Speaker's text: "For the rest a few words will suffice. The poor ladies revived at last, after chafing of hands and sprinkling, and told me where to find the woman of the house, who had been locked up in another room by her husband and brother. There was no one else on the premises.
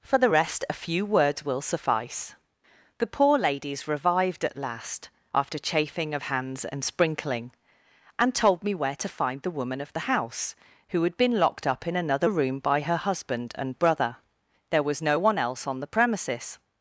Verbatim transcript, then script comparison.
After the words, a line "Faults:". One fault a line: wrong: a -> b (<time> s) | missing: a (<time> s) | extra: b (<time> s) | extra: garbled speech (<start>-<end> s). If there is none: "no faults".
"For the rest a few words will suffice. The poor ladies revived at last, after chafing of hands and sprinkling, and told me where to find the woman of the house, who had been locked up in another room by her husband and brother. There was no one else on the premises.
Faults:
no faults